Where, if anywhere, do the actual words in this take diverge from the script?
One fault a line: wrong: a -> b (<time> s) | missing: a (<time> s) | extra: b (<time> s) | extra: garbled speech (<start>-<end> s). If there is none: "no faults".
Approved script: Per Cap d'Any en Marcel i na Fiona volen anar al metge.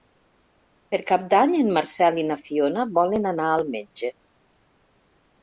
no faults